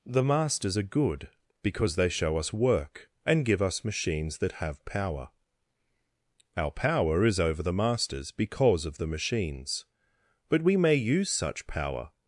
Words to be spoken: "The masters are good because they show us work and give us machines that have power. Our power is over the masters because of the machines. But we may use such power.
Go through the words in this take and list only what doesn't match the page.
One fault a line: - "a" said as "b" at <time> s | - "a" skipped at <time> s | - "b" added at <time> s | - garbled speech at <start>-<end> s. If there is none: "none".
none